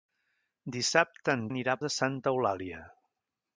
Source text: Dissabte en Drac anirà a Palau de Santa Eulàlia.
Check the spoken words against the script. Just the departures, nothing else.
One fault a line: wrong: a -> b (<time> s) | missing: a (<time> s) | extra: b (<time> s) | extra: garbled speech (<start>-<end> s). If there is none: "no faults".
missing: Drac (1.4 s)
missing: Palau (1.8 s)